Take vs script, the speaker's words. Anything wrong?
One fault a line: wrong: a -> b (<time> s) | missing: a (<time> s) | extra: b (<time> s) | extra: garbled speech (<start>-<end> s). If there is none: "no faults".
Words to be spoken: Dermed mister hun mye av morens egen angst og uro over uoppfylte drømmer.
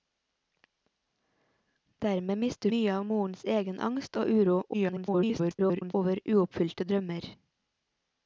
missing: hun (2.7 s)
extra: garbled speech (4.7-5.9 s)